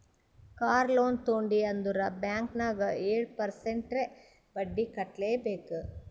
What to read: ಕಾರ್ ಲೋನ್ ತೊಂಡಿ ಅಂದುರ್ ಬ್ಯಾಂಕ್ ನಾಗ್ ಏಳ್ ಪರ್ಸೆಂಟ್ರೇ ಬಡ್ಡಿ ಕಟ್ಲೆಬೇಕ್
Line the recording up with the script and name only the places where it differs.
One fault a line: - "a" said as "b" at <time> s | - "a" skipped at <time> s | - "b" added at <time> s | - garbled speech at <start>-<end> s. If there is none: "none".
none